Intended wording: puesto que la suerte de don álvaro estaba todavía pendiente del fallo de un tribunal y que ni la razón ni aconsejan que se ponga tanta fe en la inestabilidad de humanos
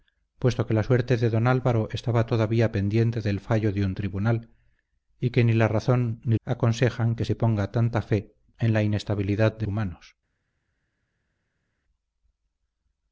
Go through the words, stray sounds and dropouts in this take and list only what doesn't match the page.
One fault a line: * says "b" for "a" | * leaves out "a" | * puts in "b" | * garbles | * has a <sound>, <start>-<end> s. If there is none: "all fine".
all fine